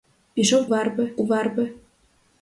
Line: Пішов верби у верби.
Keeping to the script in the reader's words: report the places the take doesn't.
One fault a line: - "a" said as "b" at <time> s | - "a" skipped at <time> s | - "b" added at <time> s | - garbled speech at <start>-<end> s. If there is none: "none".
none